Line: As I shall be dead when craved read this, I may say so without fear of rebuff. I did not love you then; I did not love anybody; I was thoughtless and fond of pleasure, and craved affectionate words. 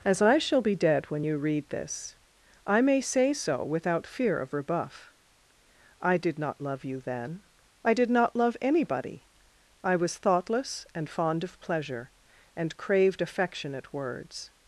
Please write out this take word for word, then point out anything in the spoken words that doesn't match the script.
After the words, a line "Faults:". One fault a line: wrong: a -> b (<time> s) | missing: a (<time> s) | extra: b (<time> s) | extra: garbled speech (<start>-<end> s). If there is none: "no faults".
As I shall be dead when you read this, I may say so without fear of rebuff. I did not love you then; I did not love anybody; I was thoughtless and fond of pleasure, and craved affectionate words.
Faults:
wrong: craved -> you (1.2 s)